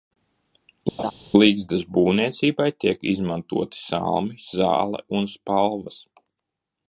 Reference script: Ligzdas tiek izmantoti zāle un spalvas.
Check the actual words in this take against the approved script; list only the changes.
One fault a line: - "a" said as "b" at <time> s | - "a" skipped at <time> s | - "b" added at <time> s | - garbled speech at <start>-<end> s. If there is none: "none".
- "būvniecībai" added at 2.0 s
- "salmi" added at 3.8 s